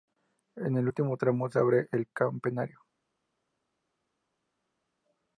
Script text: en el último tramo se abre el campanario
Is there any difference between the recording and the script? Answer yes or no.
no